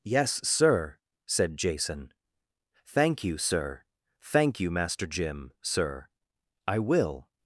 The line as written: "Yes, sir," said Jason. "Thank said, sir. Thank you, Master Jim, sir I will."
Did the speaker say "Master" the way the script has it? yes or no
yes